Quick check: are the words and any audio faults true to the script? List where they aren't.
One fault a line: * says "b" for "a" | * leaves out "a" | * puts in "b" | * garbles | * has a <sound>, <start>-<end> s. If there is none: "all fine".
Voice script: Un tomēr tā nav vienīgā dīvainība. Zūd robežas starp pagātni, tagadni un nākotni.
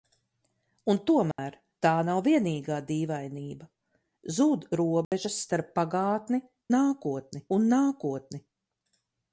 * has a dropout, 1.3-1.4 s
* has a dropout, 5.0-5.1 s
* says "nākotni" for "tagadni"